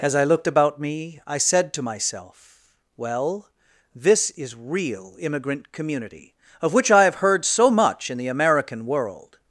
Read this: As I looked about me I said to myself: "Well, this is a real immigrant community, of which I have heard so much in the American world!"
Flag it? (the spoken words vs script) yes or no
yes